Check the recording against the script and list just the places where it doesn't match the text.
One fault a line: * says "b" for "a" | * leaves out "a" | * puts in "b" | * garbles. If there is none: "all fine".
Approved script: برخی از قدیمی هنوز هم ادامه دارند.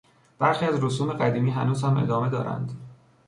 * puts in "رسوم"